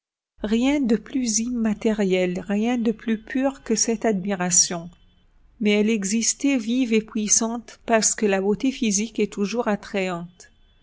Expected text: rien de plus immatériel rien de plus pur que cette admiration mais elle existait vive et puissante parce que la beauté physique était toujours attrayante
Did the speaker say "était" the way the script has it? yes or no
no